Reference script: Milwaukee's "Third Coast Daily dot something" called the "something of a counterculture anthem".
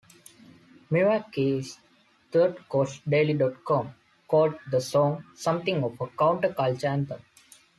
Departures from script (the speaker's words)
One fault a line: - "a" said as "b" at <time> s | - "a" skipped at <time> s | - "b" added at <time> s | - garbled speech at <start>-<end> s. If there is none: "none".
- "something" said as "com" at 3.6 s
- "song" added at 4.8 s